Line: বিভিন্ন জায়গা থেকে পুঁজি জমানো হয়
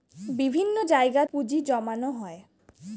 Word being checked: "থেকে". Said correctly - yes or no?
no